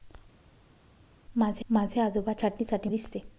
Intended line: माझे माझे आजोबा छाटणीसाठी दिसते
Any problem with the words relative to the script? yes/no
no